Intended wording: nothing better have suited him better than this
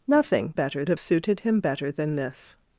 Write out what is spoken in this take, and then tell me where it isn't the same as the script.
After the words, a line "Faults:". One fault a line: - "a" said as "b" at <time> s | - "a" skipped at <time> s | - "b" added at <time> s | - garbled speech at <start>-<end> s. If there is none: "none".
nothing better have suited him better than this
Faults:
none